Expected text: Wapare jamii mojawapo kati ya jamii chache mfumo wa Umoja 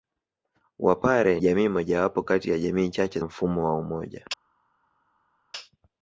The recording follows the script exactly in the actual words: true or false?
true